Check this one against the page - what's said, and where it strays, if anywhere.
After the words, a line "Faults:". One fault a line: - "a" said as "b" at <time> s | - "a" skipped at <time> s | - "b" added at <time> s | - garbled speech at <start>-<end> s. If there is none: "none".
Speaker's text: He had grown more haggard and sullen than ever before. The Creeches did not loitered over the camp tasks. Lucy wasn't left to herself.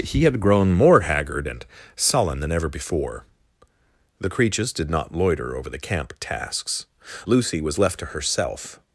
He had grown more haggard and sullen than ever before. The Creeches did not loiter over the camp tasks. Lucy was left to herself.
Faults:
- "loitered" said as "loiter" at 5.1 s
- "wasn't" said as "was" at 7.6 s